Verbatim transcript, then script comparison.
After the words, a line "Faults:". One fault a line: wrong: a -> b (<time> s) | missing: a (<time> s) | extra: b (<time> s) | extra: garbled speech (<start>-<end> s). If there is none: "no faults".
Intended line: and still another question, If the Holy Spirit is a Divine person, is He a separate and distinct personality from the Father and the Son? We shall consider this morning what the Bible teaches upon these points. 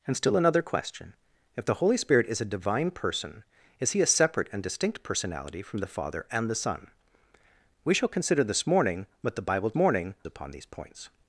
and still another question, If the Holy Spirit is a Divine person, is He a separate and distinct personality from the Father and the Son? We shall consider this morning what the Bible morning upon these points.
Faults:
wrong: teaches -> morning (9.8 s)